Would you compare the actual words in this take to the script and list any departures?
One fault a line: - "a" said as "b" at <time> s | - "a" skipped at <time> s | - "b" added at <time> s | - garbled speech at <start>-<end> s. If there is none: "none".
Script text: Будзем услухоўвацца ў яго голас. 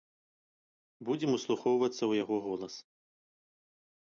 none